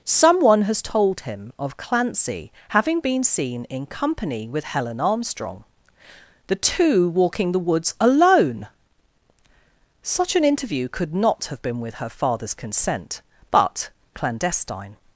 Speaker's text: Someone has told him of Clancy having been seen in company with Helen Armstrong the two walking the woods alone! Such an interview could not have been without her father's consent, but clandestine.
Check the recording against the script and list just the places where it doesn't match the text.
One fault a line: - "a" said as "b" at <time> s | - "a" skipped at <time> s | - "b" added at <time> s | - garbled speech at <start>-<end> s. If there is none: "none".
- "without" said as "with" at 11.8 s